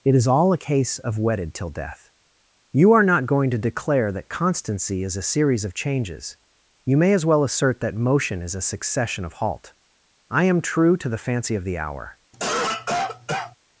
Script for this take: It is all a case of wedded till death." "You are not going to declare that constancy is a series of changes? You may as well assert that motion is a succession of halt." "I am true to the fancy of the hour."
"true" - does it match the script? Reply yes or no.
yes